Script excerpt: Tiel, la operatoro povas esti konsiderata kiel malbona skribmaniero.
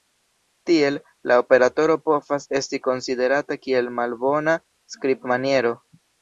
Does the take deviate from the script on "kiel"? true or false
false